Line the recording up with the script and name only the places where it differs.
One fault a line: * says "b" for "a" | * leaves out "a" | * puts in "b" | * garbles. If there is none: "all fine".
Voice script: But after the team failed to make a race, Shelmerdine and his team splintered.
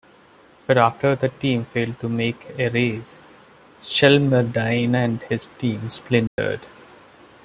all fine